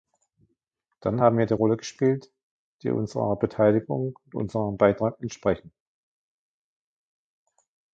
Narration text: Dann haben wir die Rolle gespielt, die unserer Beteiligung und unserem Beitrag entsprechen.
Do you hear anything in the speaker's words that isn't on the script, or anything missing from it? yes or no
no